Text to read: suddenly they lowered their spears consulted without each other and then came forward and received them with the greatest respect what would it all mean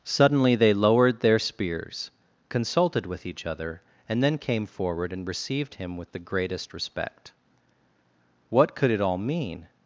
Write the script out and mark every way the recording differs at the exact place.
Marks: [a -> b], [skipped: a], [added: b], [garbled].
suddenly they lowered their spears consulted [without -> with] each other and then came forward and received [them -> him] with the greatest respect what [would -> could] it all mean